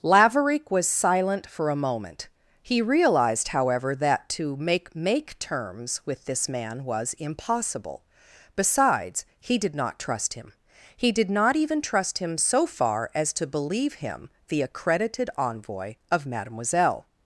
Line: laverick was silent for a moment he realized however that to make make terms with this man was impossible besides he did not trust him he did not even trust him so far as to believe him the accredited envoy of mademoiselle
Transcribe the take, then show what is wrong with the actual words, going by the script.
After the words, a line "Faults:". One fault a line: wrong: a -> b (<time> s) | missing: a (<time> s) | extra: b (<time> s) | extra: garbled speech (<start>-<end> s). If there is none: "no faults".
laverick was silent for a moment he realized however that to make make terms with this man was impossible besides he did not trust him he did not even trust him so far as to believe him the accredited envoy of mademoiselle
Faults:
no faults